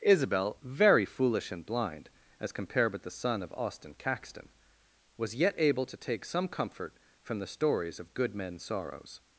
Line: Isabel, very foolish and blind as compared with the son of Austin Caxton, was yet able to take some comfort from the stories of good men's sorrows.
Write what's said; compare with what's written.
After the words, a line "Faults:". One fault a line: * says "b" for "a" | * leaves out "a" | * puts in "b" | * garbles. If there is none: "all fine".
Isabel, very foolish and blind as compared with the son of Austin Caxton, was yet able to take some comfort from the stories of good men's sorrows.
Faults:
all fine